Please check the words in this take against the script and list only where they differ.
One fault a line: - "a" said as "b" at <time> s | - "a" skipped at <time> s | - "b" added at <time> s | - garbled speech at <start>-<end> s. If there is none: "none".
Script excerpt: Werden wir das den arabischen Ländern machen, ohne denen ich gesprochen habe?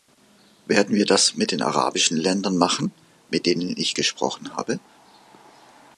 - "mit" added at 1.4 s
- "ohne" said as "mit" at 3.3 s